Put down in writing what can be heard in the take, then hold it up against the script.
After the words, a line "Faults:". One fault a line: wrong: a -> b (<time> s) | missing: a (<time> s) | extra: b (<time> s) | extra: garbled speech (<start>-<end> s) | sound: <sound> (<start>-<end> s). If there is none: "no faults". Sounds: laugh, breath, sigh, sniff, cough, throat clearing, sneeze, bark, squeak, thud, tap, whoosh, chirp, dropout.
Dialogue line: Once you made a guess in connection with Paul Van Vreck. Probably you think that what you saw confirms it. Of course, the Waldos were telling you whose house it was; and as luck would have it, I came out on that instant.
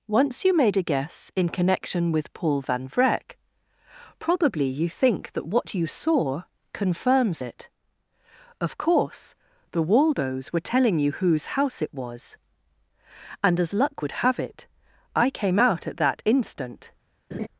Once you made a guess in connection with Paul Van Vreck. Probably you think that what you saw confirms it. Of course, the Waldos were telling you whose house it was; and as luck would have it, I came out at that instant.
Faults:
wrong: on -> at (15.9 s)
sound: laugh (17.3-17.5 s)